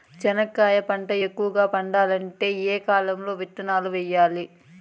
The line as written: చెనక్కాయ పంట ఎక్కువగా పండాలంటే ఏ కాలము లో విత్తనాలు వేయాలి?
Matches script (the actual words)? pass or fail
pass